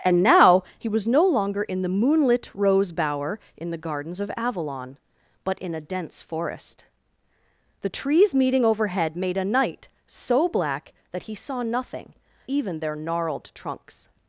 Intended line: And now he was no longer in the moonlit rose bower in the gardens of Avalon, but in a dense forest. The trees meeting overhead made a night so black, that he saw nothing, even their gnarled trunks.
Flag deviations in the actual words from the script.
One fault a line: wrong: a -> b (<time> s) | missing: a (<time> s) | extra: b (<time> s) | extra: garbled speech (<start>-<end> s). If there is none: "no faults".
no faults